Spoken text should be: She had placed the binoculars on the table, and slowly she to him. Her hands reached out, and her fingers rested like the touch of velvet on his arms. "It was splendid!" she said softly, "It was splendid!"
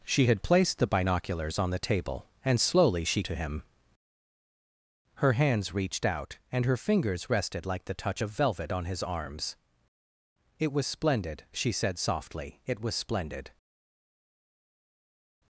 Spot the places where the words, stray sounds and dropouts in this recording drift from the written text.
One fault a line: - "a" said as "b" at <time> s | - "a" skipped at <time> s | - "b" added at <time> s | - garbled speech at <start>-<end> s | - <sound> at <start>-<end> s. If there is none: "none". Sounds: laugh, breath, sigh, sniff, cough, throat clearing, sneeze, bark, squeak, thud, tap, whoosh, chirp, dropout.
none